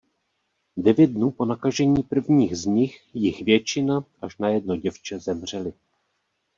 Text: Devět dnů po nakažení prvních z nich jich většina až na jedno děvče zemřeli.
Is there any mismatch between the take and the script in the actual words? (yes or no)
no